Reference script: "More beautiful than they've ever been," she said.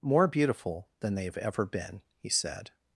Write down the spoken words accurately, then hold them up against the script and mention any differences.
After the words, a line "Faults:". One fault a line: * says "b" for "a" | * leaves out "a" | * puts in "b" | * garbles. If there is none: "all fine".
"More beautiful than they've ever been," he said.
Faults:
* says "he" for "she"